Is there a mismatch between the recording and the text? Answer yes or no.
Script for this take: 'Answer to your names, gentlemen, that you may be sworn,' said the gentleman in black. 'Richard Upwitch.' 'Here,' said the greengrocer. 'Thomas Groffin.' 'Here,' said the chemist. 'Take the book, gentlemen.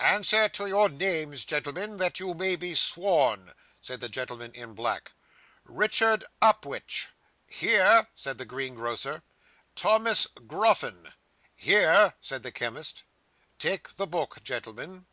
no